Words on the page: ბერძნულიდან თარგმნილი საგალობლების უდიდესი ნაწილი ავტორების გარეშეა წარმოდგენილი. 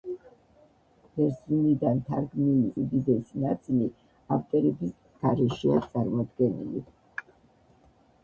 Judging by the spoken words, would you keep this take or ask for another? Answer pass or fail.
fail